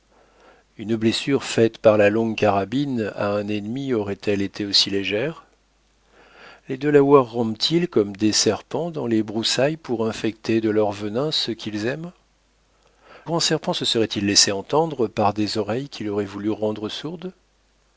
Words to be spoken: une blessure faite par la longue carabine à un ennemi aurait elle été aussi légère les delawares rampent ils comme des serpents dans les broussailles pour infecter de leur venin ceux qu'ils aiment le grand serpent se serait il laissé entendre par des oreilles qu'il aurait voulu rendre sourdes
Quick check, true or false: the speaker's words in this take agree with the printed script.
false